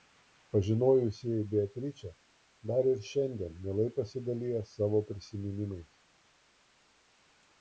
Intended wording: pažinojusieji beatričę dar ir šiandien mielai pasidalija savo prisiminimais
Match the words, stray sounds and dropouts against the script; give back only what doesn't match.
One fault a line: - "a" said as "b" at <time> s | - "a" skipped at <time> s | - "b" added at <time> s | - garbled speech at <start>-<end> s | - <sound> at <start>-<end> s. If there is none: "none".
none